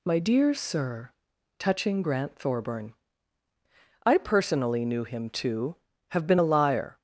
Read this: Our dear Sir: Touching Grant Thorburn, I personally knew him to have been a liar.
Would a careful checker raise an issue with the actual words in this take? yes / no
yes